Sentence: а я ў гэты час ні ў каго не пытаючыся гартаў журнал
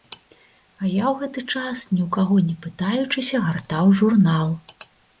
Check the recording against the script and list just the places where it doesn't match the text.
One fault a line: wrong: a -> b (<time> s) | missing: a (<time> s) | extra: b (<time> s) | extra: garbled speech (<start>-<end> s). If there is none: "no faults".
no faults